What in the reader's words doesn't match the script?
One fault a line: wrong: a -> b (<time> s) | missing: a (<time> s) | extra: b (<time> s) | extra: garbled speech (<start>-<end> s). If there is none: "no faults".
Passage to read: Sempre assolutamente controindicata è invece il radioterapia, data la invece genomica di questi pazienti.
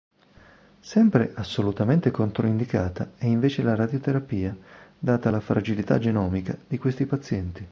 wrong: il -> la (3.6 s)
wrong: invece -> fragilità (5.4 s)